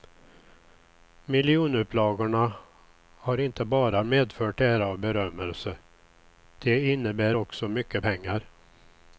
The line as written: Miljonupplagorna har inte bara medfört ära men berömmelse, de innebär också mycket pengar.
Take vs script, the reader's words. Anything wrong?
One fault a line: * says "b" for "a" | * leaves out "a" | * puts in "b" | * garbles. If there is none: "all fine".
* says "och" for "men"